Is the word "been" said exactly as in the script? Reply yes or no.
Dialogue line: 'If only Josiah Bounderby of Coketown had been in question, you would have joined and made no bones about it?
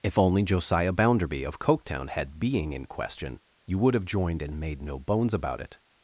no